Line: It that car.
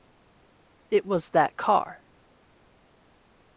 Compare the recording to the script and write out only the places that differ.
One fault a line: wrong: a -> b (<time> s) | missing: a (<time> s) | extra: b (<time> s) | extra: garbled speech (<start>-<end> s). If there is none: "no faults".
extra: was (1.1 s)